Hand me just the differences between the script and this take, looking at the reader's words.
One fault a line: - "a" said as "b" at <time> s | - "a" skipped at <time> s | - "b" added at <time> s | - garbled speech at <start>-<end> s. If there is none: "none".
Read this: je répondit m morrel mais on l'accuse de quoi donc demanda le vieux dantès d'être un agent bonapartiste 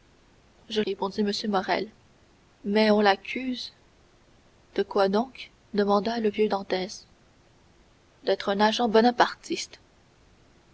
none